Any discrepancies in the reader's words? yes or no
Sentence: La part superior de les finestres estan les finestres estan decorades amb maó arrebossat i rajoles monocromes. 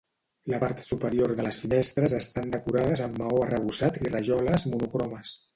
yes